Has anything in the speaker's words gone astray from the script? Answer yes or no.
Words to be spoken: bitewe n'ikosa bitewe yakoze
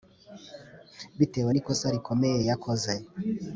yes